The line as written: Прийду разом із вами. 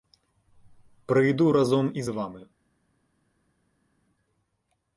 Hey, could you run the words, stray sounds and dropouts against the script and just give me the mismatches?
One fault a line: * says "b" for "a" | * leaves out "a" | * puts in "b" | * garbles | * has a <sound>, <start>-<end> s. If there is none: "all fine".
all fine